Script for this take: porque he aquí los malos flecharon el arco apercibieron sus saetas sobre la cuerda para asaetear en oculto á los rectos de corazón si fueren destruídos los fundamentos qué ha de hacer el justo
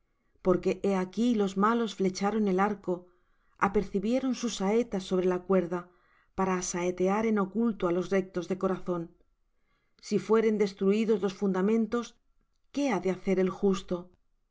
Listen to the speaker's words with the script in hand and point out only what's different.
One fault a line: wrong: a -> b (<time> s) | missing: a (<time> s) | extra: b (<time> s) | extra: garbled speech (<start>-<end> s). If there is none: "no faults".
no faults